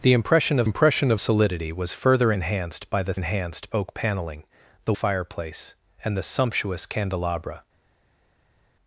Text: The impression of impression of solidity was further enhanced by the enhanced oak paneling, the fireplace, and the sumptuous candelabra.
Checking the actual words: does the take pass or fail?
pass